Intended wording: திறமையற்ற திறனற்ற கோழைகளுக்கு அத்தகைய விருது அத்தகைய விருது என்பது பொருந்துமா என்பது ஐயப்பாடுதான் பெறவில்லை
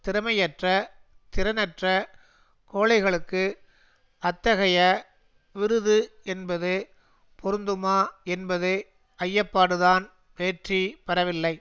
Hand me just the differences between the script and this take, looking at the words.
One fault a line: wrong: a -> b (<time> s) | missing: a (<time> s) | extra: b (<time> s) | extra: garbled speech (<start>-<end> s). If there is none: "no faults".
missing: அத்தகைய விருது (6.0 s)
extra: வெற்றி (10.4 s)